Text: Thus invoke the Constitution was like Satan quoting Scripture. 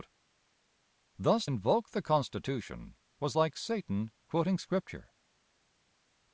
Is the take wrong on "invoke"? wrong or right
right